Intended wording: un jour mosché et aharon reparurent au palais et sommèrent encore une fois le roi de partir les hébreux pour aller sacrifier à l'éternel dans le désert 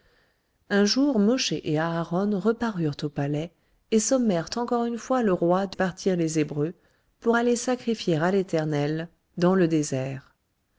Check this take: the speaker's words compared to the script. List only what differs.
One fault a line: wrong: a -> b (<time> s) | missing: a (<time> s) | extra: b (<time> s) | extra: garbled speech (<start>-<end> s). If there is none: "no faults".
no faults